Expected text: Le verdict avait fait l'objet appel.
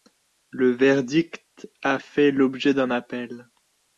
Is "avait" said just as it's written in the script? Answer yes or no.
no